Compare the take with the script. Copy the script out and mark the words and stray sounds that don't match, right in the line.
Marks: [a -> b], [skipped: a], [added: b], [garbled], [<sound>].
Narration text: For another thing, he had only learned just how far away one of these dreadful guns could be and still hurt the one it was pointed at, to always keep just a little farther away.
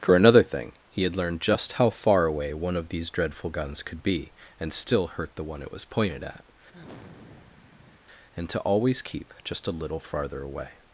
For another thing, he had [skipped: only] learned just how far away one of these dreadful guns could be and still hurt the one it was pointed at, [sigh] [added: and] to always keep just a little farther away.